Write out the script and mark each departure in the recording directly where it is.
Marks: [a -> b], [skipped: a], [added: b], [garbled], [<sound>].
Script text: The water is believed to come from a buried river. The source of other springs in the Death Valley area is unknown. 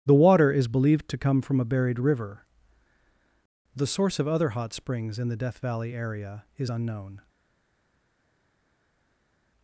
The water is believed to come from a buried river. The source of other [added: hot] springs in the Death Valley area is unknown.